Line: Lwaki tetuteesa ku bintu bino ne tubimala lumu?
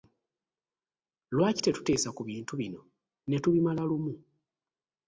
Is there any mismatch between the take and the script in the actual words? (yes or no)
no